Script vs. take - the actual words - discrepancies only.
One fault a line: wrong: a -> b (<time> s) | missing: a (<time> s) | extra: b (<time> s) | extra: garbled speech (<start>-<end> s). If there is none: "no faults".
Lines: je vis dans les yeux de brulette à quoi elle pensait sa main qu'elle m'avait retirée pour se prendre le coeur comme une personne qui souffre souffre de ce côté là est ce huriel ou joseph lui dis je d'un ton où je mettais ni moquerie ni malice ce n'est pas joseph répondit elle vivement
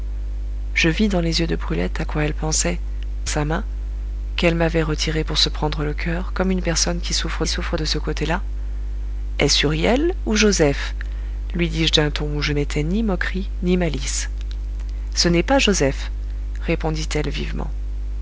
no faults